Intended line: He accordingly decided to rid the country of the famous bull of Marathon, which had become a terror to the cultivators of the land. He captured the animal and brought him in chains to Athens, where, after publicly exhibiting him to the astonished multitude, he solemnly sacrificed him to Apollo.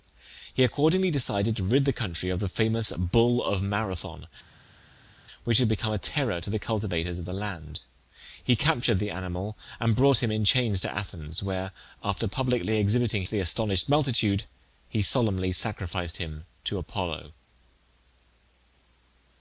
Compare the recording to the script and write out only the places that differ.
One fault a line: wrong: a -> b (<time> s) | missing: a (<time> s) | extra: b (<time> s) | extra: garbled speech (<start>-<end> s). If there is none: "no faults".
missing: him (13.2 s)